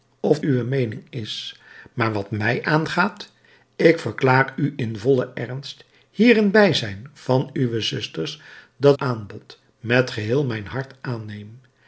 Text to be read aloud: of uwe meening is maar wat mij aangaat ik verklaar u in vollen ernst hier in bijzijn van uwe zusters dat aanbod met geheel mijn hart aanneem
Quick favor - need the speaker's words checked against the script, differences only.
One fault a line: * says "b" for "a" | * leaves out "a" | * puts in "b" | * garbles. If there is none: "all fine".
all fine